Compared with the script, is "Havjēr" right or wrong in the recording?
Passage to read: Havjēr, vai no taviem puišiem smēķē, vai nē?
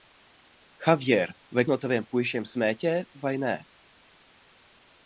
right